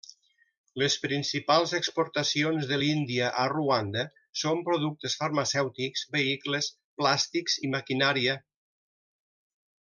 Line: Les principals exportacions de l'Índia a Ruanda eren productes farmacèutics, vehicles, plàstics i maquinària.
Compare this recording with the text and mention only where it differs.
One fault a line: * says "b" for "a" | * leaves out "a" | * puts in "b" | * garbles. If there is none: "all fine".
* says "són" for "eren"